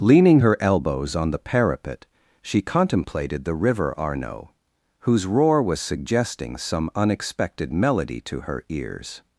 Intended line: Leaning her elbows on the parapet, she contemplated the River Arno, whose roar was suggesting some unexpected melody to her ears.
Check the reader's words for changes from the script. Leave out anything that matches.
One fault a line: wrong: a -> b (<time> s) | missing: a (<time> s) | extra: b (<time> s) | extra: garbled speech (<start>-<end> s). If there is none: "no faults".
no faults